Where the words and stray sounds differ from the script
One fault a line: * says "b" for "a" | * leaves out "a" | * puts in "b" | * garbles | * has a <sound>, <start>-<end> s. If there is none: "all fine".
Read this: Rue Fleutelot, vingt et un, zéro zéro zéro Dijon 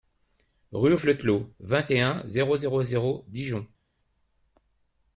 all fine